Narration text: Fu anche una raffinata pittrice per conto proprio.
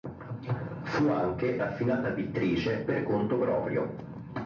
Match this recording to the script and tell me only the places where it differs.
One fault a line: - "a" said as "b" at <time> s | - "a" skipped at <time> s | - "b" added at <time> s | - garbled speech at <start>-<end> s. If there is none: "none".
- "una" skipped at 1.6 s